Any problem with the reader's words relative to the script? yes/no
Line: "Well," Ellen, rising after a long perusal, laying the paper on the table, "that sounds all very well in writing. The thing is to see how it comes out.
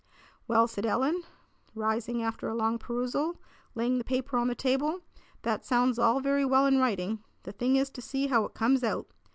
yes